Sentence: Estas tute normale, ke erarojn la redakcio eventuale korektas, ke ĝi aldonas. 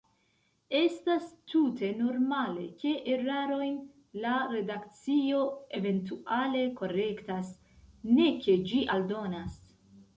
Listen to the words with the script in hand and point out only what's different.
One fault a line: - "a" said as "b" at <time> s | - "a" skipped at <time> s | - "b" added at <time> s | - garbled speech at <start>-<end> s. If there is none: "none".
- "ne" added at 8.2 s